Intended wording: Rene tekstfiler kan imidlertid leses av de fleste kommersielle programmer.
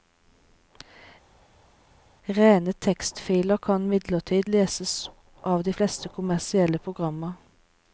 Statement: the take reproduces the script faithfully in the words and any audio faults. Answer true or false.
true